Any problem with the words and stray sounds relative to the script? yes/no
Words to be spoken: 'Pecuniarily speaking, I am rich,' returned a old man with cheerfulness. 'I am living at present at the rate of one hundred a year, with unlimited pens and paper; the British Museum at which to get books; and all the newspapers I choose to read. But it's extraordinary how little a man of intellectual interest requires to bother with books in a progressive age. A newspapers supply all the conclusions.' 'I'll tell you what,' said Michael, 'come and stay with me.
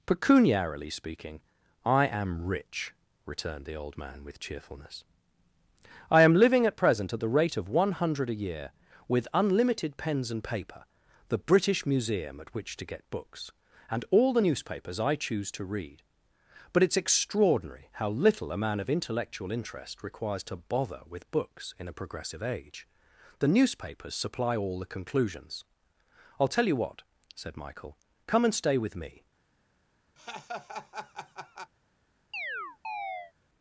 yes